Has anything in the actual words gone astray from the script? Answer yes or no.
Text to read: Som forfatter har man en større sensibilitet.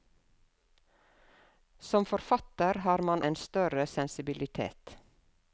no